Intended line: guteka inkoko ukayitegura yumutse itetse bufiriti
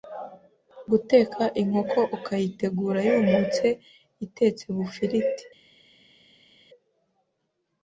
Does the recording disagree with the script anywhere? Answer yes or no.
no